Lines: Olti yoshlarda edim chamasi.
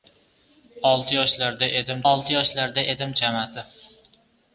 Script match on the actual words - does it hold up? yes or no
no